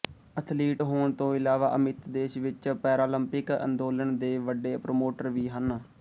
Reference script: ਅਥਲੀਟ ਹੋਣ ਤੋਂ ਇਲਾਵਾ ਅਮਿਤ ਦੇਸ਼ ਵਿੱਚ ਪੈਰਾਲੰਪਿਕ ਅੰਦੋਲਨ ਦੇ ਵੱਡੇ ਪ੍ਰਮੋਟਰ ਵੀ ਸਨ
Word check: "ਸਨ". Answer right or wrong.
wrong